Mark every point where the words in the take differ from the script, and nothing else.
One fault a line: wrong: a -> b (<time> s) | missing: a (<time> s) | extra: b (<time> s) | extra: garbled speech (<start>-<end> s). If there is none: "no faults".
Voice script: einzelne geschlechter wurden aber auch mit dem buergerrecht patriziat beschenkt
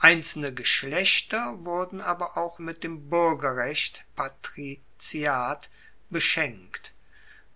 no faults